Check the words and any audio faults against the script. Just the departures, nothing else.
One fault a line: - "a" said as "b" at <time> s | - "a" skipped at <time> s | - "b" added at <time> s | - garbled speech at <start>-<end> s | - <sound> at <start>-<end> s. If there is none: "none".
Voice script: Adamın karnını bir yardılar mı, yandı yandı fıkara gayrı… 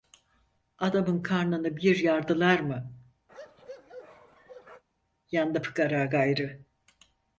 - bark at 3.3-4.8 s
- "yandı" skipped at 5.6 s